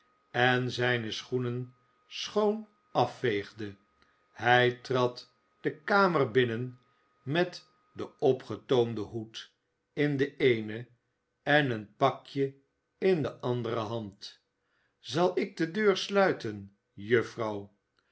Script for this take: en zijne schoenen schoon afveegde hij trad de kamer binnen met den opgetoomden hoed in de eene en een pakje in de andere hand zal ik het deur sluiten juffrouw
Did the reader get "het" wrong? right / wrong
wrong